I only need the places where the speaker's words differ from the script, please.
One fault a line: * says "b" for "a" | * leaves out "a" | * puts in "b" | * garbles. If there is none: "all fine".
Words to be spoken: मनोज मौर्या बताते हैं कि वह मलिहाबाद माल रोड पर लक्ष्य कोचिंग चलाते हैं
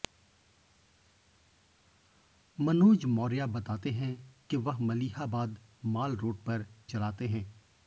* leaves out "लक्ष्य कोचिंग"